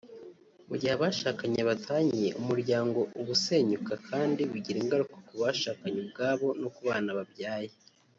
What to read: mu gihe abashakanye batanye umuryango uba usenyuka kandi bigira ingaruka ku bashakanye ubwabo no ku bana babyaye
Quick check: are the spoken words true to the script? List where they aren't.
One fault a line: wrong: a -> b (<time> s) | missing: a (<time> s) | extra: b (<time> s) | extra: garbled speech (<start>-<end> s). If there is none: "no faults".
no faults